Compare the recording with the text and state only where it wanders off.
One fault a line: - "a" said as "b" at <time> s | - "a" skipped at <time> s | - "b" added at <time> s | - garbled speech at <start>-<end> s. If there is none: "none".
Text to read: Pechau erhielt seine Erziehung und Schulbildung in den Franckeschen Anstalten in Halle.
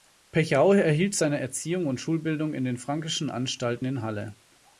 none